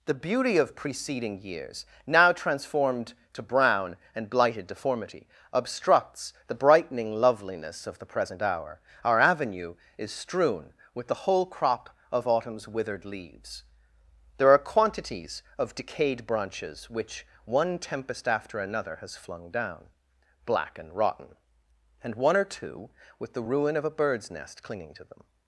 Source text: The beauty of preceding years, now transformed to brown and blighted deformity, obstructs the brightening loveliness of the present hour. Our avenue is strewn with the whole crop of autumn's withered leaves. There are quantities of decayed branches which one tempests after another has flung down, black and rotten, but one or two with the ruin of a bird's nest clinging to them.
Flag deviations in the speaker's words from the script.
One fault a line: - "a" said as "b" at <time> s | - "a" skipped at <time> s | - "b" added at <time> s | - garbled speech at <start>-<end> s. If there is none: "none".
- "tempests" said as "tempest" at 17.8 s
- "but" said as "and" at 22.0 s